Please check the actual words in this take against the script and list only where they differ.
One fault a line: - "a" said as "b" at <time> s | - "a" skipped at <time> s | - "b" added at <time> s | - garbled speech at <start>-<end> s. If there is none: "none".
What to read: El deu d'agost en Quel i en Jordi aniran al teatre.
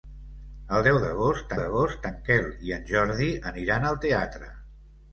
- "d'agost" added at 1.6 s